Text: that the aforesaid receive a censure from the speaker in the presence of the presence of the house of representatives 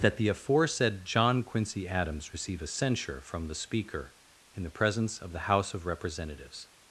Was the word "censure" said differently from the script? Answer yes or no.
no